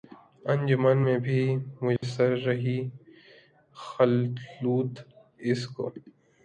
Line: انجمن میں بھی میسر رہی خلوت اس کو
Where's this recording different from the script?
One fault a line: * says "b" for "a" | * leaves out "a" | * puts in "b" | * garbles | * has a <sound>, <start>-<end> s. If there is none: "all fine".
* has a dropout, 2.0-2.0 s